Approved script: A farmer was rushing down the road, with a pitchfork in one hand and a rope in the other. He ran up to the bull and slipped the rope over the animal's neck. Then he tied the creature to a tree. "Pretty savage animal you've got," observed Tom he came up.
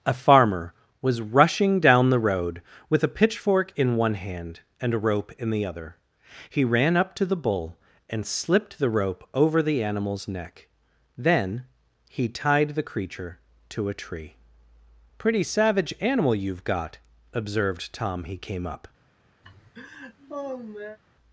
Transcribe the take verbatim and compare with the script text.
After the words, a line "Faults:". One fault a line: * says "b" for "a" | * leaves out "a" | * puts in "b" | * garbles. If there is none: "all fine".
A farmer was rushing down the road, with a pitchfork in one hand and a rope in the other. He ran up to the bull and slipped the rope over the animal's neck. Then he tied the creature to a tree. "Pretty savage animal you've got," observed Tom he came up.
Faults:
all fine